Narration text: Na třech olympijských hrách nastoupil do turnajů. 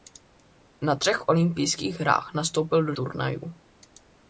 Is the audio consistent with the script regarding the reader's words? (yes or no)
yes